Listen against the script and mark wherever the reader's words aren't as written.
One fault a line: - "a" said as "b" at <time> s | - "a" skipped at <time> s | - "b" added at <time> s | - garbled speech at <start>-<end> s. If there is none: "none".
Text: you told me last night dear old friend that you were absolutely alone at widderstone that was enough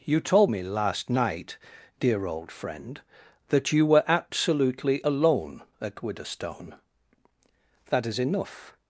- "was" said as "is" at 8.1 s